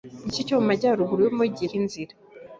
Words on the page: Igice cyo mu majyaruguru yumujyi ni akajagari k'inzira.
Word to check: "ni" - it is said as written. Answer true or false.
false